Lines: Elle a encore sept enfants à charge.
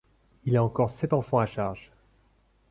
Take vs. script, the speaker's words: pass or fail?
fail